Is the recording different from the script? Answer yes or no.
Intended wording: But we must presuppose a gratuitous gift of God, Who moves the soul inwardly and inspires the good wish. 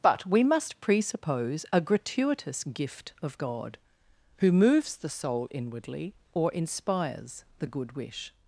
yes